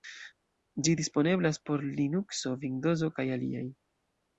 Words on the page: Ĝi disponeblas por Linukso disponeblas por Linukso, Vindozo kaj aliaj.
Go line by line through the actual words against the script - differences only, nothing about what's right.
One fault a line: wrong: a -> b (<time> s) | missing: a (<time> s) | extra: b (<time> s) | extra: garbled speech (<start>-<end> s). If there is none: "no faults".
missing: disponeblas por Linukso (2.6 s)